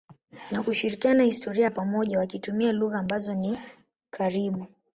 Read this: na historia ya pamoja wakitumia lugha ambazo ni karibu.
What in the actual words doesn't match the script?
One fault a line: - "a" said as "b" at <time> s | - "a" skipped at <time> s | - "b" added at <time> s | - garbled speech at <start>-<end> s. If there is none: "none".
- "kushirikiana" added at 0.6 s